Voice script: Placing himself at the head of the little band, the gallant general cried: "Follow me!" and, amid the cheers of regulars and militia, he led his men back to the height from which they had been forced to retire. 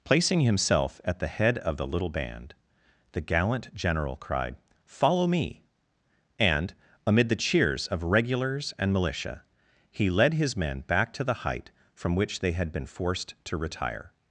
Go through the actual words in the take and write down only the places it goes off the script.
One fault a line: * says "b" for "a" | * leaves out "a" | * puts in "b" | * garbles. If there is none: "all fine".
all fine